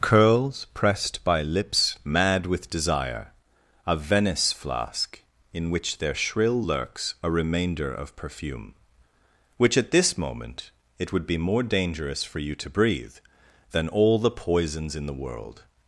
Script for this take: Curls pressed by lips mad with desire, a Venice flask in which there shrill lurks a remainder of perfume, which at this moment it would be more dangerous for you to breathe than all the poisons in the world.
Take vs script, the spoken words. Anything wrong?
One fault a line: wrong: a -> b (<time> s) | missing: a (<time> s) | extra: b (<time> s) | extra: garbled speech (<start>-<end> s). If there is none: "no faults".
no faults